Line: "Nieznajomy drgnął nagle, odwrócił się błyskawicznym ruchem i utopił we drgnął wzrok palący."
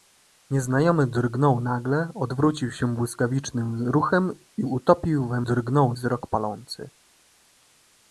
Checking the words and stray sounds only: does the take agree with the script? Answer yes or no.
yes